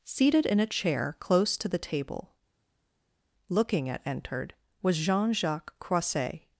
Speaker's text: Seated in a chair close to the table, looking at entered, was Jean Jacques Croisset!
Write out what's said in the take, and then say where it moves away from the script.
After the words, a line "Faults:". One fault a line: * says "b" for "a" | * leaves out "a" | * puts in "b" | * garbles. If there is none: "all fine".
Seated in a chair close to the table, looking at entered, was Jean Jacques Croisset!
Faults:
all fine